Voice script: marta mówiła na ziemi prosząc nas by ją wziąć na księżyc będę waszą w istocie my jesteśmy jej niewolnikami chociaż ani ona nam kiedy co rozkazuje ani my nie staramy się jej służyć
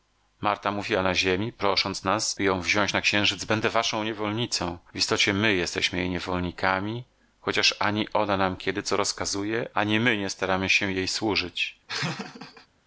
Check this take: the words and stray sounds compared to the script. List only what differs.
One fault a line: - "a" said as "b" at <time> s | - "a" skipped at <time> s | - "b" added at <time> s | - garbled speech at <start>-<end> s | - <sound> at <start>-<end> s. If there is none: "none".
- "niewolnicą" added at 4.0 s
- laugh at 11.9-12.7 s